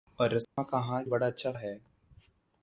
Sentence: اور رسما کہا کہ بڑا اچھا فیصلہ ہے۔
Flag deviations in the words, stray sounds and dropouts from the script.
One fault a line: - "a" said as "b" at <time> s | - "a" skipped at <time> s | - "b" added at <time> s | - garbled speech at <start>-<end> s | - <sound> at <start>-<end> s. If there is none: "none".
- dropout at 0.4-0.6 s
- "کہ" skipped at 1.0 s
- "فیصلہ" skipped at 1.5 s